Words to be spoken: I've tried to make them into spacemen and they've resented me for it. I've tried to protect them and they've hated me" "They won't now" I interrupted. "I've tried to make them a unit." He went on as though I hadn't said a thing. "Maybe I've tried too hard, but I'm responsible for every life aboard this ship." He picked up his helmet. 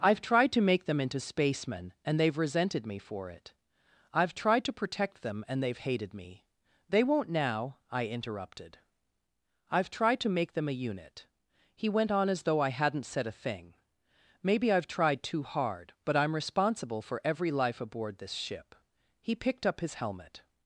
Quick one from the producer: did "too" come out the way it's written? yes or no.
yes